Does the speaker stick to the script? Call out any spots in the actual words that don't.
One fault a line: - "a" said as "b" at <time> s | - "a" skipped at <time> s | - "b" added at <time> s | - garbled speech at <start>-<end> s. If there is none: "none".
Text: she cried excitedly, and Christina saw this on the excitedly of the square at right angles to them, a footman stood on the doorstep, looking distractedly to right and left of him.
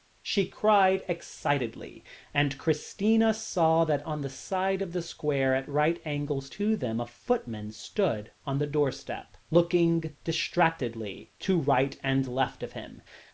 - "this" said as "that" at 3.9 s
- "excitedly" said as "side" at 4.3 s